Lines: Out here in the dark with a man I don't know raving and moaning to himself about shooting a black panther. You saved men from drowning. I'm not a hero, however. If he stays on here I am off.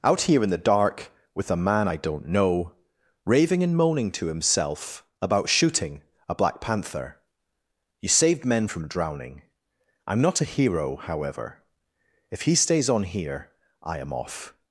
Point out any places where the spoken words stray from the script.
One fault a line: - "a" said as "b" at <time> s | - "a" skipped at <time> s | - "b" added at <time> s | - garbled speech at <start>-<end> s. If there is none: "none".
none